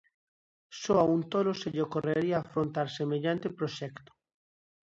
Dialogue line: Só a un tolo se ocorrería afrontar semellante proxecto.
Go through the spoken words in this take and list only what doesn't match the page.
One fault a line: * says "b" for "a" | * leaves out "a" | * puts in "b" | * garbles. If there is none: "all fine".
* puts in "lle"